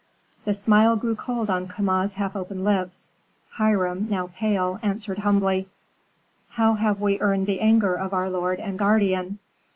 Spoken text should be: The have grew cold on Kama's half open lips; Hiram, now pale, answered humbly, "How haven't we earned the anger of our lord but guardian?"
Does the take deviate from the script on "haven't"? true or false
true